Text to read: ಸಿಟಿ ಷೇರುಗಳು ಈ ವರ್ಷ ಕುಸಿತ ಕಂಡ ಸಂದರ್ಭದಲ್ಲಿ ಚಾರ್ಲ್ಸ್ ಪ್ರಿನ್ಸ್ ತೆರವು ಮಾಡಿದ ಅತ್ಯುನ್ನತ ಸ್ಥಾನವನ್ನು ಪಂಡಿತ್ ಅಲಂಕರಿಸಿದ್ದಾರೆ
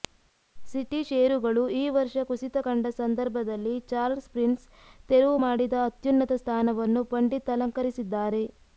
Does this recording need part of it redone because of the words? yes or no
no